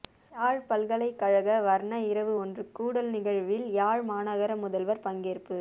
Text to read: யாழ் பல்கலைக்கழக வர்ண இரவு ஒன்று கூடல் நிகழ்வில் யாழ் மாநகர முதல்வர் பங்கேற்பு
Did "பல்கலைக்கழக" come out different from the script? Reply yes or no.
no